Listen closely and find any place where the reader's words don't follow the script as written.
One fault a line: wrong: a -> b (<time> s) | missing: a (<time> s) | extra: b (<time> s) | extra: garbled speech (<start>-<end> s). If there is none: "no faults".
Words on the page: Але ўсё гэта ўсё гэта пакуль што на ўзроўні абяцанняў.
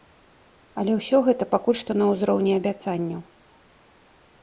missing: ўсё гэта (1.5 s)